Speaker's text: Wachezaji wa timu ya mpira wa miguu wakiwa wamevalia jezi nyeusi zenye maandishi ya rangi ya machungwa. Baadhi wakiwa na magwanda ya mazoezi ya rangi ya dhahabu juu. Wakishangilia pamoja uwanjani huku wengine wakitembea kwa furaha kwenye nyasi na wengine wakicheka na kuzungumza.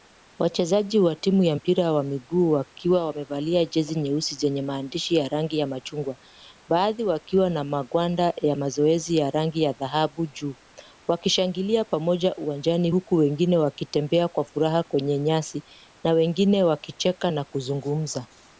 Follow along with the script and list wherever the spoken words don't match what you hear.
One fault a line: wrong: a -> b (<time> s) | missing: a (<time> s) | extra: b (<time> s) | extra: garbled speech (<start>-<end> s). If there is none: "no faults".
no faults